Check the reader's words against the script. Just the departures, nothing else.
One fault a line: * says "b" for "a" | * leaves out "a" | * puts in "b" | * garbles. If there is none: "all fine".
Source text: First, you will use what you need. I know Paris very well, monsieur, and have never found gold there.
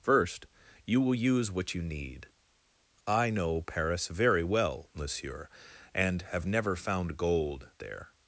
all fine